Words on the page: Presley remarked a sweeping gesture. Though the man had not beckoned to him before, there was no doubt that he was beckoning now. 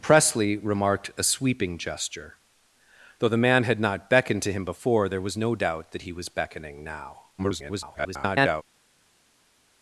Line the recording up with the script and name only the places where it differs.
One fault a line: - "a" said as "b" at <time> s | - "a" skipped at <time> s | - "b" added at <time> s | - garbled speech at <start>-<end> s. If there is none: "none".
- garbled speech at 7.4-8.6 s